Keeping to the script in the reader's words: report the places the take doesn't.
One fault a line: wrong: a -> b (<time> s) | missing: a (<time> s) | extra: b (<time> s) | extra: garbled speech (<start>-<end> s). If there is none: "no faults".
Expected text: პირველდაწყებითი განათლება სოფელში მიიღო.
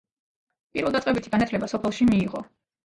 no faults